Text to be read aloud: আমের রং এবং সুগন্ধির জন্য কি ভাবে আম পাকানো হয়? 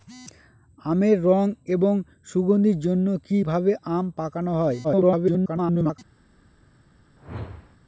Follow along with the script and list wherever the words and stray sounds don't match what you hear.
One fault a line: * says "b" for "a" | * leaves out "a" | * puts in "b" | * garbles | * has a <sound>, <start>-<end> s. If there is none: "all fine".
* garbles
* has a whoosh, 7.2-7.8 s